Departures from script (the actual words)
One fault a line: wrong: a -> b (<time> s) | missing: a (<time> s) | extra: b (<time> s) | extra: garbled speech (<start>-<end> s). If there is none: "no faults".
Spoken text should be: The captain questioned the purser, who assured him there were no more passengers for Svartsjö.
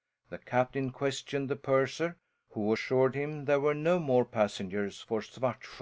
no faults